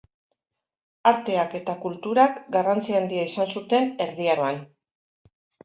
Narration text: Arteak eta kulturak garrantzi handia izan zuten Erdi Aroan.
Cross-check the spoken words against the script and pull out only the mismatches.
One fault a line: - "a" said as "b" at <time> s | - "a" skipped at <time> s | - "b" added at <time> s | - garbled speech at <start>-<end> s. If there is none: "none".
none